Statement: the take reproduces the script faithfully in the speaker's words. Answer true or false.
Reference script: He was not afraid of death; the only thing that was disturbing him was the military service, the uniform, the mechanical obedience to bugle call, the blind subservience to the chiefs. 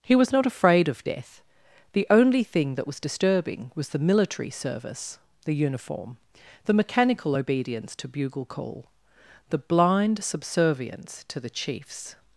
false